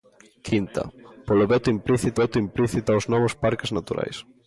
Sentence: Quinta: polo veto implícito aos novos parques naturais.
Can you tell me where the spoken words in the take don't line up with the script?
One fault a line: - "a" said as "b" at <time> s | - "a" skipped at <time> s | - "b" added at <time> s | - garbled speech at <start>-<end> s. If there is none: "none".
- "veto implícito" added at 2.2 s